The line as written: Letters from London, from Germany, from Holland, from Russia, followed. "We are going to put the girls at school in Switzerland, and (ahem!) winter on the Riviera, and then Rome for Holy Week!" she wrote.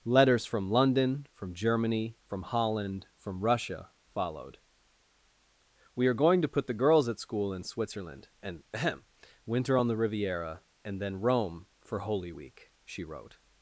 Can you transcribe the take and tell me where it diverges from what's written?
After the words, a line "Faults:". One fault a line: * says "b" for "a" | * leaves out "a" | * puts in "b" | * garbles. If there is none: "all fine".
Letters from London, from Germany, from Holland, from Russia, followed. "We are going to put the girls at school in Switzerland, and (ahem!) winter on the Riviera, and then Rome for Holy Week!" she wrote.
Faults:
all fine